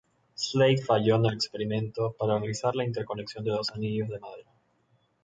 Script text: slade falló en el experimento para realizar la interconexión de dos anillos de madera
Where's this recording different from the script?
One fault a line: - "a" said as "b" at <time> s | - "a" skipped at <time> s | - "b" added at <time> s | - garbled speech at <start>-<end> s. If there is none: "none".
none